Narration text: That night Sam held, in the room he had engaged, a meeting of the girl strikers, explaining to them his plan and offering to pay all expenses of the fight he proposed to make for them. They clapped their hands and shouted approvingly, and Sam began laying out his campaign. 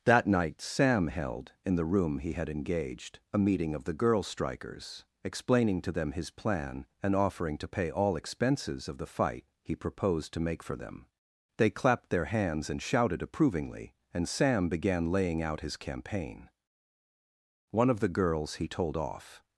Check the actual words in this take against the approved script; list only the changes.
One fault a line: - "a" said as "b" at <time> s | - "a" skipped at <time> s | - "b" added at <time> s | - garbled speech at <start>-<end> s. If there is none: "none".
- "One of the girls he told off" added at 17.7 s